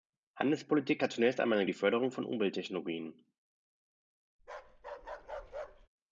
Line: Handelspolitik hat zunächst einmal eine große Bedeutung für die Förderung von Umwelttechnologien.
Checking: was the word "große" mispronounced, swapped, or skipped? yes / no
yes